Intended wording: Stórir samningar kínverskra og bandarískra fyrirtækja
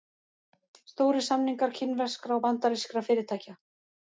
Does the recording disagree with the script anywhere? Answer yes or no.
no